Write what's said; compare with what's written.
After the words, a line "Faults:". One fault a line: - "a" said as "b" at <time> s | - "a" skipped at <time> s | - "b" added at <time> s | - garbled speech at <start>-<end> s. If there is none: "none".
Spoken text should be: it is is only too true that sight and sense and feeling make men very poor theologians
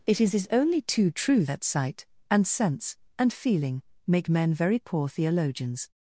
it is is only too true that sight and sense and feeling make men very poor theologians
Faults:
none